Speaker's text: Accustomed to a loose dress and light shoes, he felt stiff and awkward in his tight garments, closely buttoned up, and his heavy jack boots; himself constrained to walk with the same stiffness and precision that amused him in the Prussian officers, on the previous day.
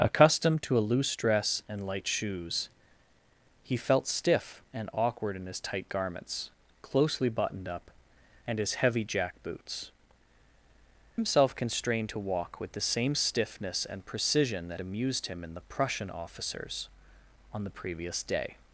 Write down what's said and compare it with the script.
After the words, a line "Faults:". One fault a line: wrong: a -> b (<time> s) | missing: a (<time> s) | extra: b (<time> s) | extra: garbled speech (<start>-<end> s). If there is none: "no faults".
Accustomed to a loose dress and light shoes, he felt stiff and awkward in his tight garments, closely buttoned up, and his heavy jack boots; himself constrained to walk with the same stiffness and precision that amused him in the Prussian officers, on the previous day.
Faults:
no faults